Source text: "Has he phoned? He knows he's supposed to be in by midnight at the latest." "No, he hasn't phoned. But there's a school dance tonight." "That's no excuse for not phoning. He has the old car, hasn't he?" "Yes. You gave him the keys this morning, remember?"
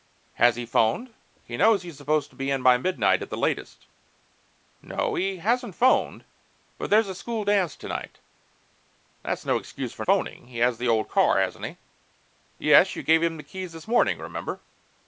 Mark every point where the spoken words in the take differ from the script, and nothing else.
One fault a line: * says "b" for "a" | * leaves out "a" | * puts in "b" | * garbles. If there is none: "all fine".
* leaves out "not"